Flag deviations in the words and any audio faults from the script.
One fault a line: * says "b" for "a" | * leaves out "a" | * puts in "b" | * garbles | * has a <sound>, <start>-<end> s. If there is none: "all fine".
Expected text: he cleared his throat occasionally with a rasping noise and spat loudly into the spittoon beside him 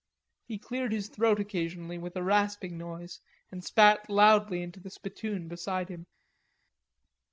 all fine